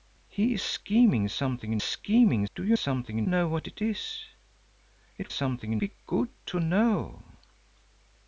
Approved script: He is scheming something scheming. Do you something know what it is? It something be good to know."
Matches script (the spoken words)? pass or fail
pass